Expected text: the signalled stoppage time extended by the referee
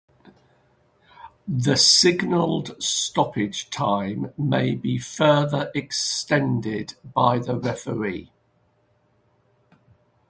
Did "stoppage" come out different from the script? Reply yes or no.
no